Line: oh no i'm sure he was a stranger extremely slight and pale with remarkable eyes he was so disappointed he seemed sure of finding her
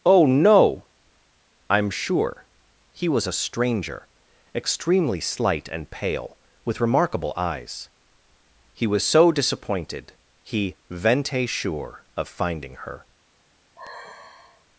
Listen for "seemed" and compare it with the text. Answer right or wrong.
wrong